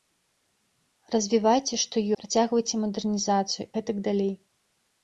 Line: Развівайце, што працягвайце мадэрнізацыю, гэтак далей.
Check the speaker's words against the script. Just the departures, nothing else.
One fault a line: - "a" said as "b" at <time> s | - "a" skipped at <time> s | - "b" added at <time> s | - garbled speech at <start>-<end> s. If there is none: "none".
none